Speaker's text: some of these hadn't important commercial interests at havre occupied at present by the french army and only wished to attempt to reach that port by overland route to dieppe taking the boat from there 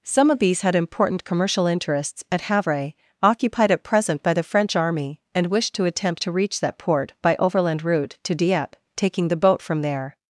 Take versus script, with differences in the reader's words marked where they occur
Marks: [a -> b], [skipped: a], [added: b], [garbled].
some of these [hadn't -> had] important commercial interests at havre occupied at present by the french army and [skipped: only] wished to attempt to reach that port by overland route to dieppe taking the boat from there